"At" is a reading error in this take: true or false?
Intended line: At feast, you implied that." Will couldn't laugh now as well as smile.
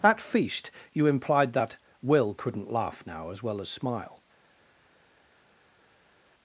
false